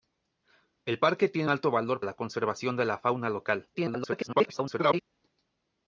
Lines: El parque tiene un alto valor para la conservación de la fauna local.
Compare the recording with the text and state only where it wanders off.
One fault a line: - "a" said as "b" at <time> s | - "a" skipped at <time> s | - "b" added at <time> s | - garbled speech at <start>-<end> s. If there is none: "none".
- "un" skipped at 1.5 s
- "para" skipped at 2.0 s
- garbled speech at 3.7-5.0 s